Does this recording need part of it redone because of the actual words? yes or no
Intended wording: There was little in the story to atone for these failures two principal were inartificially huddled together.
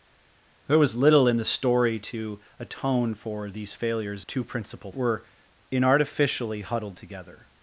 no